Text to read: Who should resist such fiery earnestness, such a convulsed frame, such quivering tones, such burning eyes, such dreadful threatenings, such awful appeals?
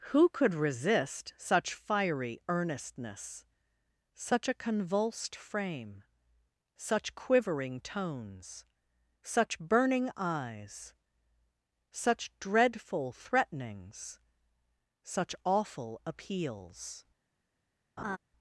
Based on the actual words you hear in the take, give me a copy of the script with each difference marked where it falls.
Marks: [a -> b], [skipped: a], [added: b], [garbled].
Who [should -> could] resist such fiery earnestness, such a convulsed frame, such quivering tones, such burning eyes, such dreadful threatenings, such awful appeals?